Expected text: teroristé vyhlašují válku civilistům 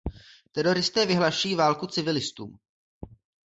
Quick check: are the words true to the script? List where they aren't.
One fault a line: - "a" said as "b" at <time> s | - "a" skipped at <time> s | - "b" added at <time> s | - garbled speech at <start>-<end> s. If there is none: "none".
none